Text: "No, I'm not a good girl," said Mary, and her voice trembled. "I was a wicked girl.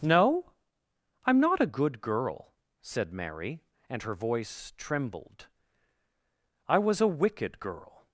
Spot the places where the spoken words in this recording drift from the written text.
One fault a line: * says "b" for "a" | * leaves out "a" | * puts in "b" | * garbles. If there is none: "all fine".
all fine